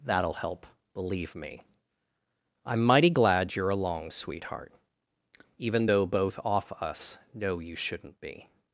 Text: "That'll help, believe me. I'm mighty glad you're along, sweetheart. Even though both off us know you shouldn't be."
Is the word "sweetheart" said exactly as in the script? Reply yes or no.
yes